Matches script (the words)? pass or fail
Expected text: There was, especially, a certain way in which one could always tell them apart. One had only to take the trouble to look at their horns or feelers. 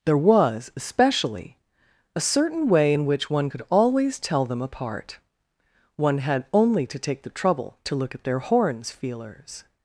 fail